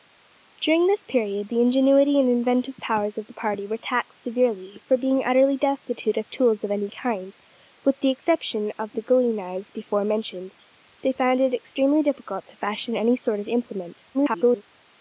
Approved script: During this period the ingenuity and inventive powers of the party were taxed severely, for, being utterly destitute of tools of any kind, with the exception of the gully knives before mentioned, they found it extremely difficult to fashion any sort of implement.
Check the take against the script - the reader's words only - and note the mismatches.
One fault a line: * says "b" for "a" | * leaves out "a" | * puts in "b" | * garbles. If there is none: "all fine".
* garbles